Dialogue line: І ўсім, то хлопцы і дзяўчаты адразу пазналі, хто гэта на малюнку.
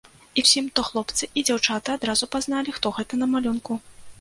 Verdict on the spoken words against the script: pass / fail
pass